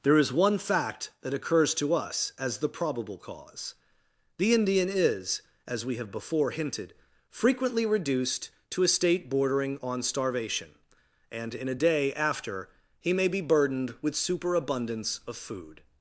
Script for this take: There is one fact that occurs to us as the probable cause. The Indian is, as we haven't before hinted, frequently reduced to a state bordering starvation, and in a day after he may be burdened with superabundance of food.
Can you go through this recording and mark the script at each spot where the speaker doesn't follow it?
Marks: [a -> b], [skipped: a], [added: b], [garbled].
There is one fact that occurs to us as the probable cause. The Indian is, as we [haven't -> have] before hinted, frequently reduced to a state bordering [added: on] starvation, and in a day after he may be burdened with superabundance of food.